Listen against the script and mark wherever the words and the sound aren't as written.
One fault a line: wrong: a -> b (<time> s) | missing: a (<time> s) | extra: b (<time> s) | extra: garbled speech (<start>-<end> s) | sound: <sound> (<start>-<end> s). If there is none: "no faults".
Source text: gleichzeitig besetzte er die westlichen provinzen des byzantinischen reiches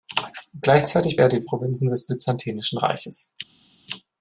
missing: besetzte (1.2 s)
missing: westlichen (1.5 s)